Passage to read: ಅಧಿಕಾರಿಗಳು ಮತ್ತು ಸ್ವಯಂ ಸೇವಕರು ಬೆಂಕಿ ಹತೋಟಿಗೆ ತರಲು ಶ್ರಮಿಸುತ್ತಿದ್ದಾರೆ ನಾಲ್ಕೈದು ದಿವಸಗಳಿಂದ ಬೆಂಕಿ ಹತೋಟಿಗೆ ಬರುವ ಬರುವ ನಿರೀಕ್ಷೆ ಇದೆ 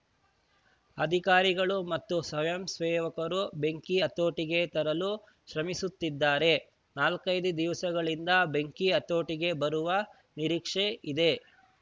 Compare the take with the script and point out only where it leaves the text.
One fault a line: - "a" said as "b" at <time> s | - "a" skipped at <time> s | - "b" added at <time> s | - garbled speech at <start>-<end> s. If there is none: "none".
- "ಬರುವ" skipped at 9.9 s